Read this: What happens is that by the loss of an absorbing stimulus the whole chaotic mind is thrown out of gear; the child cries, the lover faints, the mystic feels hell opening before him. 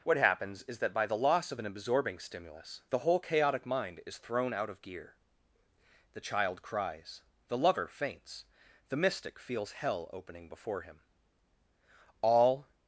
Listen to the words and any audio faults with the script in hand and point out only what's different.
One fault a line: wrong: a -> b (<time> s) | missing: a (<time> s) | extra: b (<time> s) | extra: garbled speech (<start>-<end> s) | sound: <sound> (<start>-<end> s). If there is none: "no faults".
extra: All (12.2 s)